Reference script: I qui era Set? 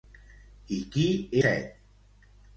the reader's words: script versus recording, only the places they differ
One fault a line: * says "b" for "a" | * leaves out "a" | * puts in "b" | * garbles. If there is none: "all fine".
* leaves out "era"